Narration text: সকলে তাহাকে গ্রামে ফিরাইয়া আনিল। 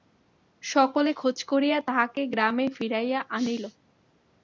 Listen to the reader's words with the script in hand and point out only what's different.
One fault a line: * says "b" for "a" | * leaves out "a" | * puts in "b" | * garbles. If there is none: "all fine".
* puts in "খোঁজ করিয়া"